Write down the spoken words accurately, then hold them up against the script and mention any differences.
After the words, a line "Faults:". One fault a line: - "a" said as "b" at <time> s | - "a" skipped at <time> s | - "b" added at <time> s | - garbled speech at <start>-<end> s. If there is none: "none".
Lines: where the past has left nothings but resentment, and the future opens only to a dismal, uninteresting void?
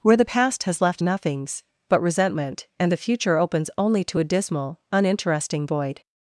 where the past has left nothings but resentment, and the future opens only to a dismal, uninteresting void?
Faults:
none